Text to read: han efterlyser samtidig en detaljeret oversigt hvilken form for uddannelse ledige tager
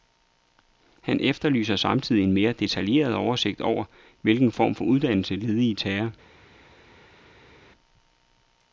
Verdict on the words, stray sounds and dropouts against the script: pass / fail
fail